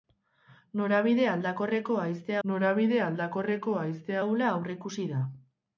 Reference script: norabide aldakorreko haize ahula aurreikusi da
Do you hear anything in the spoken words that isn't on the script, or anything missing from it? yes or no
yes